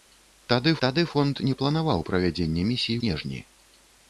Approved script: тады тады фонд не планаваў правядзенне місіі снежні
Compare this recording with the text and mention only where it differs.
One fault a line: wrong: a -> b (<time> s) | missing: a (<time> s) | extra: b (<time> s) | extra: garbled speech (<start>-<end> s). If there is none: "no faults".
no faults